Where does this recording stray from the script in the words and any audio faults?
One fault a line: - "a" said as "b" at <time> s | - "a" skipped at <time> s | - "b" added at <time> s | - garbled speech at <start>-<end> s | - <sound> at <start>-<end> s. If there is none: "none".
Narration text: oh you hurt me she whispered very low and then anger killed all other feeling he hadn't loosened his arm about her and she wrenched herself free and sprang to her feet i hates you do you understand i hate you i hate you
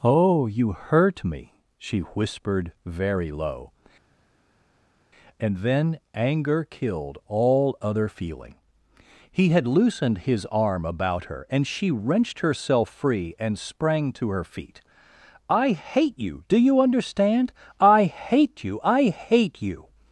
- "hadn't" said as "had" at 9.5 s
- "hates" said as "hate" at 15.7 s